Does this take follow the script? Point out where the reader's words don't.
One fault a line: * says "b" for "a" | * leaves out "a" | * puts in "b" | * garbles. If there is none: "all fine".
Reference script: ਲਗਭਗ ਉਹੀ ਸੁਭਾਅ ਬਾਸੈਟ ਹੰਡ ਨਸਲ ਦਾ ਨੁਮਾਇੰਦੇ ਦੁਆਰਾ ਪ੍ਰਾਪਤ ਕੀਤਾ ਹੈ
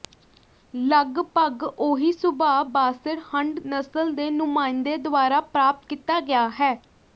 * says "ਦੇ" for "ਦਾ"
* puts in "ਗਿਆ"